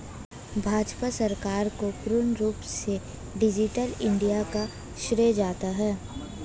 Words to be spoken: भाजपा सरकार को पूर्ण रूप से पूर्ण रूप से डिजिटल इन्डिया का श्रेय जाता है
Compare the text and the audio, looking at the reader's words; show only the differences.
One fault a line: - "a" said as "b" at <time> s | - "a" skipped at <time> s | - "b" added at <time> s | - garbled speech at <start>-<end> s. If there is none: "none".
- "पूर्ण रूप से" skipped at 3.0 s